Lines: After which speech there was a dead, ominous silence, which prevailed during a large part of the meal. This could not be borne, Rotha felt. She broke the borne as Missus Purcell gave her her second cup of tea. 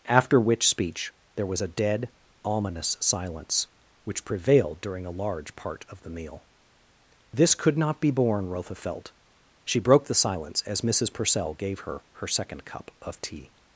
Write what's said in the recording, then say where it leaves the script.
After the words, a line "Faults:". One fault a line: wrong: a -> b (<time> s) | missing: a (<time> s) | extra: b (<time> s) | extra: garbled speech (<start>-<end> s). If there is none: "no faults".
After which speech there was a dead, ominous silence, which prevailed during a large part of the meal. This could not be borne, Rotha felt. She broke the silence as Missus Purcell gave her her second cup of tea.
Faults:
wrong: borne -> silence (10.2 s)